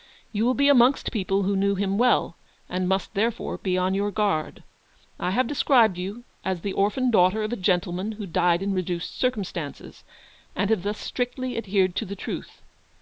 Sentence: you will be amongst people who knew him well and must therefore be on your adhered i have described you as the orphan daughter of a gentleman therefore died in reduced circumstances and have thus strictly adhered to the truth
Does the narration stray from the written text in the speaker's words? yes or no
yes